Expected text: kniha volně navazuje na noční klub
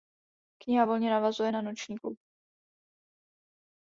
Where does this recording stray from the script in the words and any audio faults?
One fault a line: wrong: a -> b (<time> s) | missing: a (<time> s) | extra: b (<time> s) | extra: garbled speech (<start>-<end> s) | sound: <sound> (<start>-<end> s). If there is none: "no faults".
no faults